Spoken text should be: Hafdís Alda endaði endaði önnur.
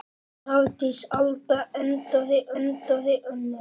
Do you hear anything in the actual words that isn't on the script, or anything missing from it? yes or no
no